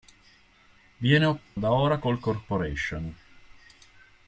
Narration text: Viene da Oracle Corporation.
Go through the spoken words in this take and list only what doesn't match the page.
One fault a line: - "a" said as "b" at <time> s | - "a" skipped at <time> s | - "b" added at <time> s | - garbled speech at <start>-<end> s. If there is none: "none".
none